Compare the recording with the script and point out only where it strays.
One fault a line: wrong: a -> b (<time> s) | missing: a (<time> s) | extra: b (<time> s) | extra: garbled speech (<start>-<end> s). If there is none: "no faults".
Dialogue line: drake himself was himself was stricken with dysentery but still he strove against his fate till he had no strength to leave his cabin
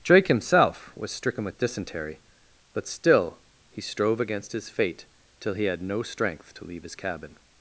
missing: himself was (1.1 s)